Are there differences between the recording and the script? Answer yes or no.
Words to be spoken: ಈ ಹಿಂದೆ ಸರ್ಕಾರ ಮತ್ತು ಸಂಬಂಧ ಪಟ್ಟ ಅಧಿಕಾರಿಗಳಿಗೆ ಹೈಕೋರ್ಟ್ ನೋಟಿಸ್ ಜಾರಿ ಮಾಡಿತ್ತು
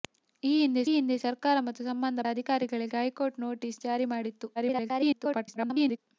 yes